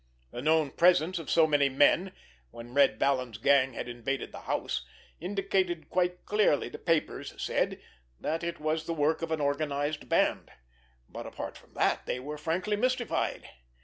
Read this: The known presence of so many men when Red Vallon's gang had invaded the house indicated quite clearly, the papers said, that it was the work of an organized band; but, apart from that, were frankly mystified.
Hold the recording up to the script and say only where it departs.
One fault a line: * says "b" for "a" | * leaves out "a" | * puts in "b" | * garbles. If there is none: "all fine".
* puts in "they"